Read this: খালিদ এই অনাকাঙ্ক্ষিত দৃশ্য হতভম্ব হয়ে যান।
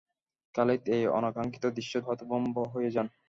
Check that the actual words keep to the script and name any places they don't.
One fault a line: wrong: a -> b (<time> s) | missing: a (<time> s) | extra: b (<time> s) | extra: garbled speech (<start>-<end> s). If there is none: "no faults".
no faults